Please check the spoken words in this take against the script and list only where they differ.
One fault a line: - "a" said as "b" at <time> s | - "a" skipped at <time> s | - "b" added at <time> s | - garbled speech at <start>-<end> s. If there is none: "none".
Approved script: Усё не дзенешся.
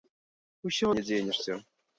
none